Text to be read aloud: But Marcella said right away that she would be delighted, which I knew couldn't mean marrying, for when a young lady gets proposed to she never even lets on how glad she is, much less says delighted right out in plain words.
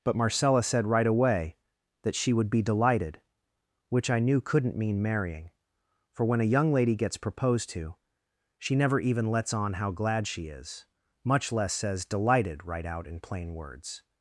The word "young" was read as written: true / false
true